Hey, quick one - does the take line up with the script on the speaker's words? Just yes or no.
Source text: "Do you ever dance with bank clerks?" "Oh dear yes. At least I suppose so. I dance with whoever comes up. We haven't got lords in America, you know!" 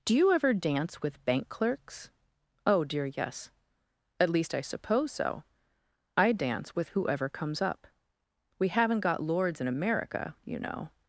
yes